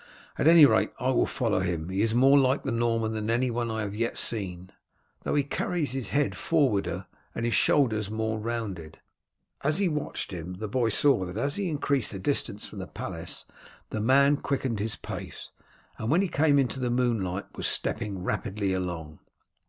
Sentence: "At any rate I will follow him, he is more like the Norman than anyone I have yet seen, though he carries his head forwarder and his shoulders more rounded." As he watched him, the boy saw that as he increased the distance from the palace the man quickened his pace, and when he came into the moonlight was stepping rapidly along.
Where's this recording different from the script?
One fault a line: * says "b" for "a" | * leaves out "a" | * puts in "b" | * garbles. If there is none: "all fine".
all fine